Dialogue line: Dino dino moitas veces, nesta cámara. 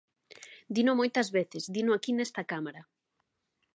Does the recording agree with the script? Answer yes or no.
no